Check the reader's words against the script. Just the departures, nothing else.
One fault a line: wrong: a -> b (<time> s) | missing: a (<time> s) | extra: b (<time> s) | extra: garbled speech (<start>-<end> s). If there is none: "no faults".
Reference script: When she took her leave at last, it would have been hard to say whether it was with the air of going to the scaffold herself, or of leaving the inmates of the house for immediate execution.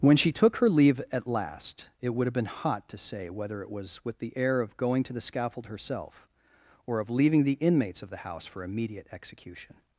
wrong: hard -> hot (2.5 s)